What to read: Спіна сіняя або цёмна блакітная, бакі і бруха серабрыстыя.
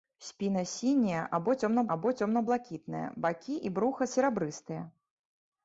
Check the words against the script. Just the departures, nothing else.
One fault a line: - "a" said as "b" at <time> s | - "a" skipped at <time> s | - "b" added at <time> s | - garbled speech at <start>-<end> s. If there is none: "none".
- "або цёмна" added at 1.9 s